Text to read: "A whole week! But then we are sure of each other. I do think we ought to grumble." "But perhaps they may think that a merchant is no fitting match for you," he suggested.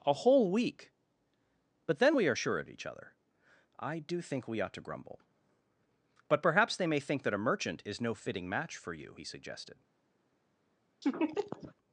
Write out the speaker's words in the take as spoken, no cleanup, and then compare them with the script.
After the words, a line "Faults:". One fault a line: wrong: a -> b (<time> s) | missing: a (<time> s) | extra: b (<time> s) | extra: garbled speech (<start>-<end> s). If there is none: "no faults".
"A whole week! But then we are sure of each other. I do think we ought to grumble." "But perhaps they may think that a merchant is no fitting match for you," he suggested.
Faults:
no faults